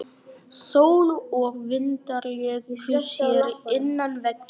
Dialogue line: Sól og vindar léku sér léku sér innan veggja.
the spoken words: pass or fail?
fail